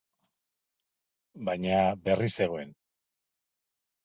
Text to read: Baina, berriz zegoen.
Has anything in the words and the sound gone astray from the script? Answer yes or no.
no